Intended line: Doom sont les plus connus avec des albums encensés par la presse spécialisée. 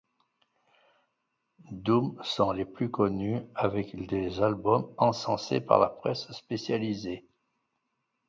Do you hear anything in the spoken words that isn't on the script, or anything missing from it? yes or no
no